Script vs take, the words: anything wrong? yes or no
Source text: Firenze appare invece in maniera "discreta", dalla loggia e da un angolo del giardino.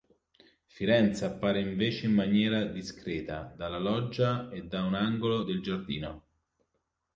no